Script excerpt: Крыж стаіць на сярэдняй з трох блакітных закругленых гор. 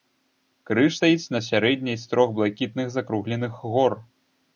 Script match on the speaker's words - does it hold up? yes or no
yes